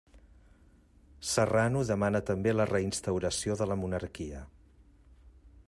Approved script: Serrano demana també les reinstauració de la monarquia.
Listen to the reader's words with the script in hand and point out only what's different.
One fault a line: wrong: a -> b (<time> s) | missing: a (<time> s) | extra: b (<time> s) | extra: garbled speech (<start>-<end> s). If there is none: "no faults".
wrong: les -> la (2.5 s)